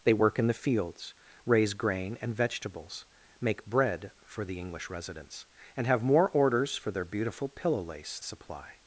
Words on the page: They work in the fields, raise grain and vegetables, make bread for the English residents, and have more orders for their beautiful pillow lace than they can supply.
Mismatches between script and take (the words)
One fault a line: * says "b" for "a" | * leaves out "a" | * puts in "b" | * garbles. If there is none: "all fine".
* leaves out "than they can"